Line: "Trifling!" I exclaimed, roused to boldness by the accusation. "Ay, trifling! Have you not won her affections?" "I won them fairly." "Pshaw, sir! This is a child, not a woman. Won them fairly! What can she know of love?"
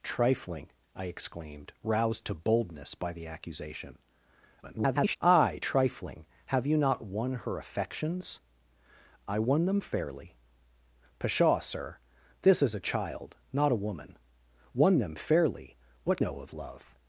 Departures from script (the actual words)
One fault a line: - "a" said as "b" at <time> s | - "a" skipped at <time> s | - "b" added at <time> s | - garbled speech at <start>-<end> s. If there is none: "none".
- garbled speech at 4.6-5.2 s
- "can she" skipped at 16.2 s